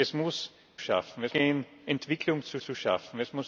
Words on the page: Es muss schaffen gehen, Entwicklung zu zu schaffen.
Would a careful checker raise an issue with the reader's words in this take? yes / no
no